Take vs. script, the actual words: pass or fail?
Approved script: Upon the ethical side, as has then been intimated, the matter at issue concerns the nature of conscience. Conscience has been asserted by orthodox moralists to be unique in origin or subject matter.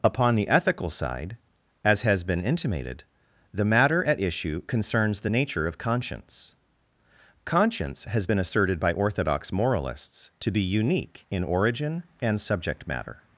fail